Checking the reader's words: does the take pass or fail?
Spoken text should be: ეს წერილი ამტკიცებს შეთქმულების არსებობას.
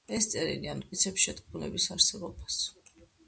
pass